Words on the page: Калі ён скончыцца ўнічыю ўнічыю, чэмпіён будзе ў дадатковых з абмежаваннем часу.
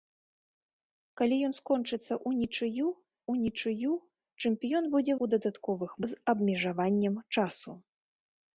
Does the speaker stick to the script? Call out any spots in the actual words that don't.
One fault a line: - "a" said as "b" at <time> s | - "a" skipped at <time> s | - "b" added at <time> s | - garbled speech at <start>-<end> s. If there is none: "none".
none